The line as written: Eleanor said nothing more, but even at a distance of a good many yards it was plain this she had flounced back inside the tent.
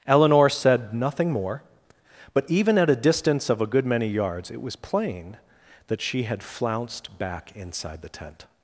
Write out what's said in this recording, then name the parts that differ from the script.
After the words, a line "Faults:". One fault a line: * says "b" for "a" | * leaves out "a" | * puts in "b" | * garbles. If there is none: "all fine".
Eleanor said nothing more, but even at a distance of a good many yards it was plain that she had flounced back inside the tent.
Faults:
* says "that" for "this"